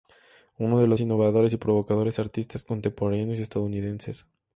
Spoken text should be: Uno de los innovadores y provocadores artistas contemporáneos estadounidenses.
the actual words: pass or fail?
pass